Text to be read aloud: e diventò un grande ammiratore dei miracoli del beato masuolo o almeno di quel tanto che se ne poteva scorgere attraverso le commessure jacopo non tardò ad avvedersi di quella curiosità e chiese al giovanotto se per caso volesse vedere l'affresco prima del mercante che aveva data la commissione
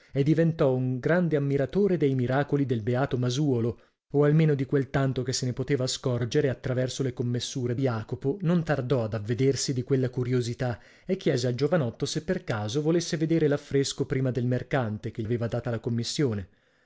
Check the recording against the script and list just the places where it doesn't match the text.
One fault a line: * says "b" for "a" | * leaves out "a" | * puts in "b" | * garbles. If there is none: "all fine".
all fine